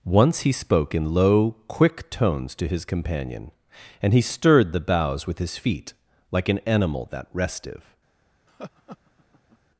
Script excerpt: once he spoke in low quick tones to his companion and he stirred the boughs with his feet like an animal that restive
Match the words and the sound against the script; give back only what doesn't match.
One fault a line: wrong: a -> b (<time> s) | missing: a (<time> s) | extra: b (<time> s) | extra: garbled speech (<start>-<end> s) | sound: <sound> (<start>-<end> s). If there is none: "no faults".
sound: laugh (8.5-9.6 s)